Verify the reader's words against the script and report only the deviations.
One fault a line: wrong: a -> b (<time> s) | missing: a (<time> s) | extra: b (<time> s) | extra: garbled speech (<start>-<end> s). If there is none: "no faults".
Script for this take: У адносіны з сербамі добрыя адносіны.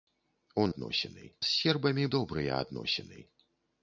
no faults